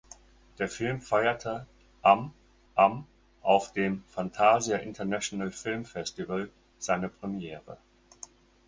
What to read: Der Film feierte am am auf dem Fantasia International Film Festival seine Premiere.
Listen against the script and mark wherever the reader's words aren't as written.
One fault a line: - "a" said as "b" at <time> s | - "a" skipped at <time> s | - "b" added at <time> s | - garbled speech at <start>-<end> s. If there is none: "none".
none